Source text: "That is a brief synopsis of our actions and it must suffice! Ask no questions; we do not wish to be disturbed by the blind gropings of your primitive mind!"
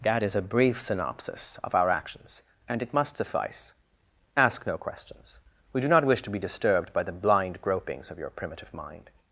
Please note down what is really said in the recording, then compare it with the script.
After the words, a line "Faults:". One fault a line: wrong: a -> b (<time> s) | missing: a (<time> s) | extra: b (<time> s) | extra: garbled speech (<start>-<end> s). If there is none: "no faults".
"That is a brief synopsis of our actions and it must suffice! Ask no questions; we do not wish to be disturbed by the blind gropings of your primitive mind!"
Faults:
no faults